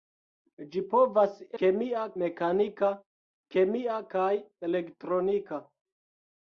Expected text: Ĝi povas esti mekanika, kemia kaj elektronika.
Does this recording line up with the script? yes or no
no